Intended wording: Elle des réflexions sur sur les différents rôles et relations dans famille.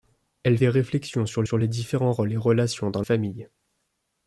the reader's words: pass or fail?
pass